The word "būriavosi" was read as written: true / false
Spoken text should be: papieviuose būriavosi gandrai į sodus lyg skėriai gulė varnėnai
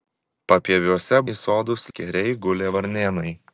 false